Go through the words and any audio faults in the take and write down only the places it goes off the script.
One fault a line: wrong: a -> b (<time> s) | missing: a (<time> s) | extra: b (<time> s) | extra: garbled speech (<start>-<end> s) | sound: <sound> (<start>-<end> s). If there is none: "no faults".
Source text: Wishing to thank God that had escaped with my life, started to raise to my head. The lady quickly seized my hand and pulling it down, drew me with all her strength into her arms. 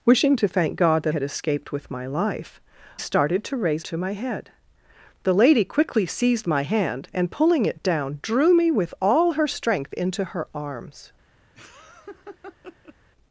sound: laugh (11.5-13.0 s)